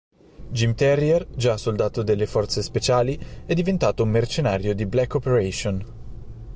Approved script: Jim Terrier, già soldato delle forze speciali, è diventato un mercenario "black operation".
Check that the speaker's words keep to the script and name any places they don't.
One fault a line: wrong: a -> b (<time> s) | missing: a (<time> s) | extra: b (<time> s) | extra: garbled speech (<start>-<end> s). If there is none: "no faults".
extra: di (4.7 s)